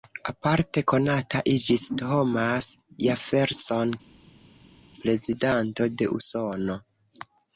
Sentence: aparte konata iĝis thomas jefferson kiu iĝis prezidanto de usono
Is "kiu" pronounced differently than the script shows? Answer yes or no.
yes